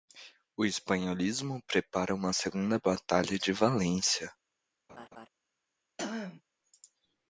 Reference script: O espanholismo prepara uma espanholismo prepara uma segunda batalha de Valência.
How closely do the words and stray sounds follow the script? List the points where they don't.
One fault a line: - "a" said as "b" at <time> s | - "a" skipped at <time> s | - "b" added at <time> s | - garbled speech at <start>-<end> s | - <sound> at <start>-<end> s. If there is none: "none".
- "espanholismo prepara uma" skipped at 2.3 s
- laugh at 4.9-5.3 s
- throat clearing at 6.0-6.4 s